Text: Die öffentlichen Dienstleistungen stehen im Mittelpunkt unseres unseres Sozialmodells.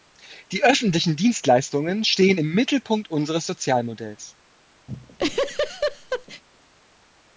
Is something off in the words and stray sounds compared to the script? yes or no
yes